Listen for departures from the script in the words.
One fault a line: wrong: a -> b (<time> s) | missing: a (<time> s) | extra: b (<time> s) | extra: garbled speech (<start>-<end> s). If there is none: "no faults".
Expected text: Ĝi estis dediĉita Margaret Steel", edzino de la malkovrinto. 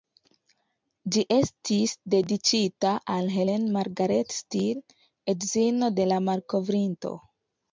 extra: al Helen (3.2 s)